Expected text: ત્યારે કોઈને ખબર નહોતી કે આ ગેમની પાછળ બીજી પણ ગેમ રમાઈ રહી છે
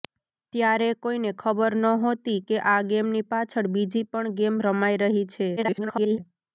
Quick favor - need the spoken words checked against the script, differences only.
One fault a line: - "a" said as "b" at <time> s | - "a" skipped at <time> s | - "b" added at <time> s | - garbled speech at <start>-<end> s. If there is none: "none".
- garbled speech at 5.6-6.2 s